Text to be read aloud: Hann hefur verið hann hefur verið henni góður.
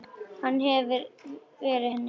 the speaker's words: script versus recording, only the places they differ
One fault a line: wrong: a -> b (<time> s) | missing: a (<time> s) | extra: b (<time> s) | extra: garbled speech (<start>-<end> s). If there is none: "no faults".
missing: hann hefur verið (1.9 s)